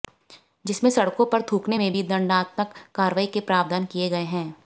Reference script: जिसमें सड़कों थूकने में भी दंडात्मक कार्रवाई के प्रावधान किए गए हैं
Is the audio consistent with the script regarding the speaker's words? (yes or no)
no